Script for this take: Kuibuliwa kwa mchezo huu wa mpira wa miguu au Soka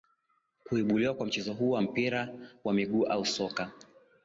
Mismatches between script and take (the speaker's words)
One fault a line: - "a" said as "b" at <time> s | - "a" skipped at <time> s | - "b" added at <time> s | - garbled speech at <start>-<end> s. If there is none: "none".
none